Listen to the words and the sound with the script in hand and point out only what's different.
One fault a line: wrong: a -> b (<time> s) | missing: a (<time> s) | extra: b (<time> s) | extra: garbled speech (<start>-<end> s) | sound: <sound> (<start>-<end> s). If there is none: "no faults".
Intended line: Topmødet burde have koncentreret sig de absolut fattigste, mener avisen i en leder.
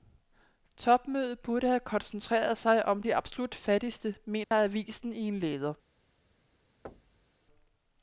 extra: om (2.9 s)
sound: dropout (4.4-4.5 s)
sound: thud (6.8-7.3 s)